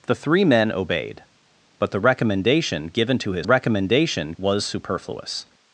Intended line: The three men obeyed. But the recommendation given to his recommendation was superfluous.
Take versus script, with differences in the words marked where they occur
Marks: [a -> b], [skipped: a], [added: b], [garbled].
The three men obeyed. But the recommendation given to his recommendation was superfluous.